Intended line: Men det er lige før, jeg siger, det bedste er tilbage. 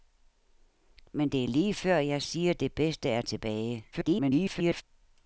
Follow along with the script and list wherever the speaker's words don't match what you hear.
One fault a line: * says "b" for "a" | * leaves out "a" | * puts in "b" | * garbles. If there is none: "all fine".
* garbles